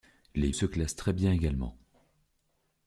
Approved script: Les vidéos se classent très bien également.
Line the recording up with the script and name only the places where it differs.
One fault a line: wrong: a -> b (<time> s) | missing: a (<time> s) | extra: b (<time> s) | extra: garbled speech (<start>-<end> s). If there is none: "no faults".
missing: vidéos (0.5 s)